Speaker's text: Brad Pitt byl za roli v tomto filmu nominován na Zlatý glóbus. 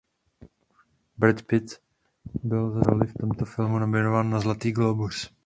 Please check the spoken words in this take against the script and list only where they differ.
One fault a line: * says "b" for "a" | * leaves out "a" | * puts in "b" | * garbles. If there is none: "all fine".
all fine